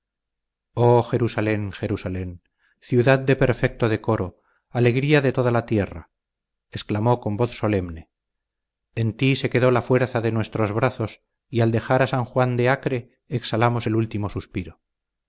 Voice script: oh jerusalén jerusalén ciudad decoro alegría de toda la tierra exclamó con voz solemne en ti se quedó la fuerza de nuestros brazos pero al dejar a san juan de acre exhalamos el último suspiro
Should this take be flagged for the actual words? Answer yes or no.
yes